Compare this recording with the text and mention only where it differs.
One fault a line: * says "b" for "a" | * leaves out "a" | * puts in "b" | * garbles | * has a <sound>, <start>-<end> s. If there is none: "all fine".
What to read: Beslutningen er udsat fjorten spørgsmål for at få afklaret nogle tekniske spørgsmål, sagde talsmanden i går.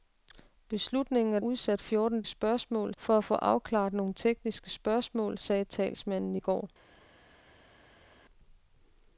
all fine